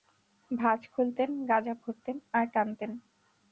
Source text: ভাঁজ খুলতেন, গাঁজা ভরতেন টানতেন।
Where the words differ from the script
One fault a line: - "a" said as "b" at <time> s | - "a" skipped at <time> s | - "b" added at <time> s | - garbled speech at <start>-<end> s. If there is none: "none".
- "আর" added at 2.3 s